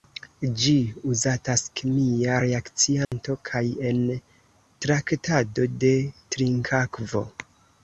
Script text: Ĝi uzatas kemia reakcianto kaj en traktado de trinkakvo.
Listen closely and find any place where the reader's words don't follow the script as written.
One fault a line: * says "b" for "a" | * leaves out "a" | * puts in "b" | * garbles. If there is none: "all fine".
all fine